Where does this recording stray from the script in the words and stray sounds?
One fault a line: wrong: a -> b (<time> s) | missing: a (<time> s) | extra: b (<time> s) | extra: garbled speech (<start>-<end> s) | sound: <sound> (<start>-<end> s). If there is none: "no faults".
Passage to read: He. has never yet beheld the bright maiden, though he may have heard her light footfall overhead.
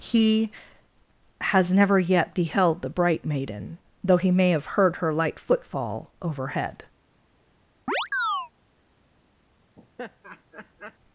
sound: chirp (7.9-8.5 s)
sound: laugh (9.8-11.0 s)